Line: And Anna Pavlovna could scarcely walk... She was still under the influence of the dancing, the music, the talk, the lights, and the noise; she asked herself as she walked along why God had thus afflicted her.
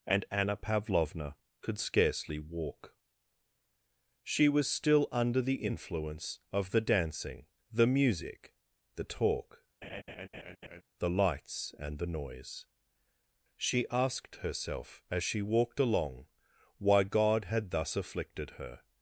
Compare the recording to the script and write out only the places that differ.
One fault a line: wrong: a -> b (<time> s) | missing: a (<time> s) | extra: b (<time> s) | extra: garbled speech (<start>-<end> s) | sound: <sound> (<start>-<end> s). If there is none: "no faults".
sound: laugh (9.8-10.8 s)